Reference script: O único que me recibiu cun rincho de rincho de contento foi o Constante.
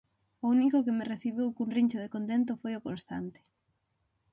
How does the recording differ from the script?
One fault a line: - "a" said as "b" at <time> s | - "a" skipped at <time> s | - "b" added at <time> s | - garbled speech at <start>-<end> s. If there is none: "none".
- "rincho de" skipped at 2.1 s